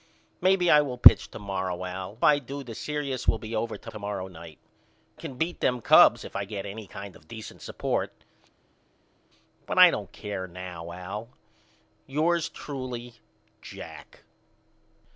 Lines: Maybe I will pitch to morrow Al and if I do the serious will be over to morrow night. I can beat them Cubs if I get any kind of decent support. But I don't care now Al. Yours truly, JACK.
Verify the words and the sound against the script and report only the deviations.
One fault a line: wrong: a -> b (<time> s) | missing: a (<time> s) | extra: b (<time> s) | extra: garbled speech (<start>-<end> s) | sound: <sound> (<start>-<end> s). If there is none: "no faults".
missing: and if (2.2 s)
extra: to (3.9 s)
missing: I (4.6 s)